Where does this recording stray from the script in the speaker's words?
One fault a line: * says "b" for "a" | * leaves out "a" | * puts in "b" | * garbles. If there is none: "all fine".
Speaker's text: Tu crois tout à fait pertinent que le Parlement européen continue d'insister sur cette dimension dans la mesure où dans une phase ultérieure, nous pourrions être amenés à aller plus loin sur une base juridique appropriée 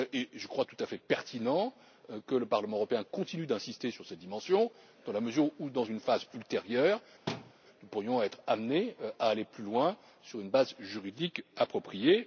* says "Je" for "Tu"